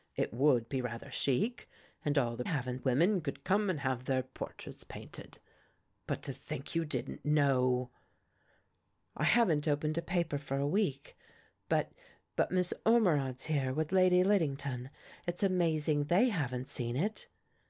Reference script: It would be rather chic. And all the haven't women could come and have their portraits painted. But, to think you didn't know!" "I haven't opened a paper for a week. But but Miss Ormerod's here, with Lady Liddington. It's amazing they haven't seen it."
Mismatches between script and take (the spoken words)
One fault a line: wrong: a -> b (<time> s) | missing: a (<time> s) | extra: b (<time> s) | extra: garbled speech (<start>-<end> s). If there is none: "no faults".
no faults